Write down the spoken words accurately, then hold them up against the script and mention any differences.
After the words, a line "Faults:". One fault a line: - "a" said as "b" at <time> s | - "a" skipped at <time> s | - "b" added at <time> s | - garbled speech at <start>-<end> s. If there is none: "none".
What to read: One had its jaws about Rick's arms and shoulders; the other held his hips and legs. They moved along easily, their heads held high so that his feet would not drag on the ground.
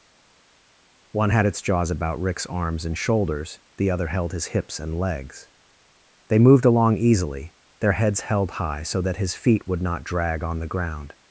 One had its jaws about Rick's arms and shoulders; the other held his hips and legs. They moved along easily, their heads held high so that his feet would not drag on the ground.
Faults:
none